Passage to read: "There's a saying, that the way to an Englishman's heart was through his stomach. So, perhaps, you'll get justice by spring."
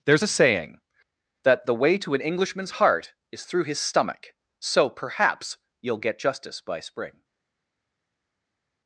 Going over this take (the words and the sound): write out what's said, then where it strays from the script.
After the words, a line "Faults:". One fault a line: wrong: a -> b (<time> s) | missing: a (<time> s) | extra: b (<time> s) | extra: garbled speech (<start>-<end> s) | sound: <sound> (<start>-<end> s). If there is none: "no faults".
"There's a saying, that the way to an Englishman's heart is through his stomach. So, perhaps, you'll get justice by spring."
Faults:
wrong: was -> is (3.3 s)